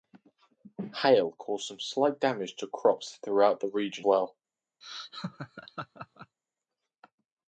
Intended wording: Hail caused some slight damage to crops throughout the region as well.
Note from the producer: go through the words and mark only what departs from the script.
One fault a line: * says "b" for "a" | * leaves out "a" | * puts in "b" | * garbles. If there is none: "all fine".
* leaves out "as"